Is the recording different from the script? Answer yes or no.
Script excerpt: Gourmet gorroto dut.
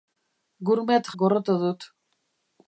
no